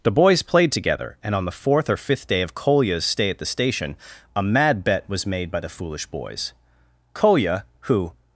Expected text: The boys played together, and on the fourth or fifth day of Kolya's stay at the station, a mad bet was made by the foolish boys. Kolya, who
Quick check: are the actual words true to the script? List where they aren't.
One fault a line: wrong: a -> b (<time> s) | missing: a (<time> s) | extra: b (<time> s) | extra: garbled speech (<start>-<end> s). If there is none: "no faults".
no faults